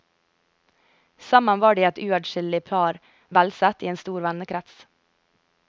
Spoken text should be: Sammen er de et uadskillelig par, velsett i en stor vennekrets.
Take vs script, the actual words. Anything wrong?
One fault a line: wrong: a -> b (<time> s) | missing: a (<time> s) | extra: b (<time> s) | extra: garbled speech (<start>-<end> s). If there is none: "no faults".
wrong: er -> var (1.6 s)